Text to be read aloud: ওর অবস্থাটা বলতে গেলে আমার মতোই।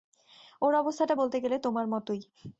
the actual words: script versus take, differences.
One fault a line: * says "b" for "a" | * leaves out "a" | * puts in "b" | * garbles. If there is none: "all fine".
* says "তোমার" for "আমার"